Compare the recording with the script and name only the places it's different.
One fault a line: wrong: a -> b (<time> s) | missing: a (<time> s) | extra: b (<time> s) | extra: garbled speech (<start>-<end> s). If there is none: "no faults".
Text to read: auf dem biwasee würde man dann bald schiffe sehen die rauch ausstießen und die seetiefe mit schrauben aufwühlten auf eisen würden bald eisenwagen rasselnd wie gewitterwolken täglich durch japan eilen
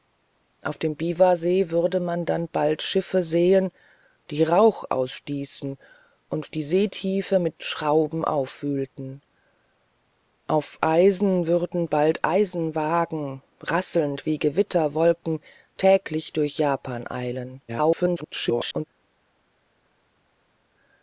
extra: garbled speech (17.7-18.8 s)